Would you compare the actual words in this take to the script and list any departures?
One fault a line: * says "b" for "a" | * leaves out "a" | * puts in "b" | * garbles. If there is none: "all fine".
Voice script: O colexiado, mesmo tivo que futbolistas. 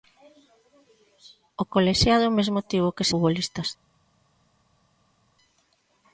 all fine